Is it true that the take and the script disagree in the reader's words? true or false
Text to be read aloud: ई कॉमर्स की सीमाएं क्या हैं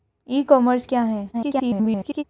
true